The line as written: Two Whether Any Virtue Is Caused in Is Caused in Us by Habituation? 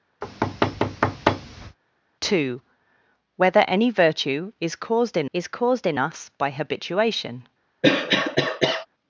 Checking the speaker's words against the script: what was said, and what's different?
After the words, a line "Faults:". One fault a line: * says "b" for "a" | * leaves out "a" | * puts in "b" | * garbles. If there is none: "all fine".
Two Whether Any Virtue Is Caused in Is Caused in Us by Habituation?
Faults:
all fine